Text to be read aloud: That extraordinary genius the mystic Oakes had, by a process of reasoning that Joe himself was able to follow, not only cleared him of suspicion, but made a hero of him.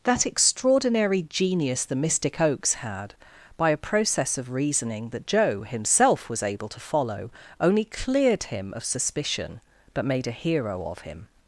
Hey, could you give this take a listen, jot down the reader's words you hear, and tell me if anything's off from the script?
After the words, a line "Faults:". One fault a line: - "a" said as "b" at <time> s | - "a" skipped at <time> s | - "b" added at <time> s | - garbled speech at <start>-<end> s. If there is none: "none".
That extraordinary genius the mystic Oakes had, by a process of reasoning that Joe himself was able to follow, only cleared him of suspicion, but made a hero of him.
Faults:
- "not" skipped at 7.3 s